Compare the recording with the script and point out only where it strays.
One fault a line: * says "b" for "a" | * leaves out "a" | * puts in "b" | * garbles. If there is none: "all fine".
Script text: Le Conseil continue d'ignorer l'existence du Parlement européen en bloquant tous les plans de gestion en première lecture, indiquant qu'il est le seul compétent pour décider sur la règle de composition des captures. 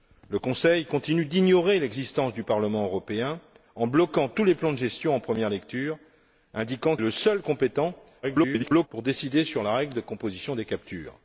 * leaves out "qu'il"
* garbles